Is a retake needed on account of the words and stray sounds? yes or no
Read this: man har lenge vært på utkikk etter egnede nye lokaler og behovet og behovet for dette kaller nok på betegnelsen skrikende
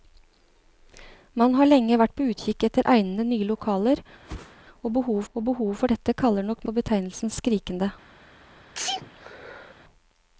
yes